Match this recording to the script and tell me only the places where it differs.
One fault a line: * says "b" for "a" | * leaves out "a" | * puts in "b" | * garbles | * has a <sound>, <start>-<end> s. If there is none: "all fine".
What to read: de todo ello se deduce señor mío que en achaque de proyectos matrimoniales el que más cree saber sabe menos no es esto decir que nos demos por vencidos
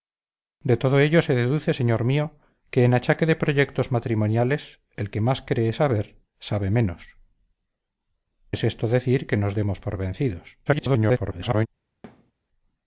* leaves out "no"
* garbles
* has a thud, 12.0-12.3 s